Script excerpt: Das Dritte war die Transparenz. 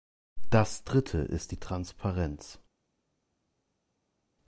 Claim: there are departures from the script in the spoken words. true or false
true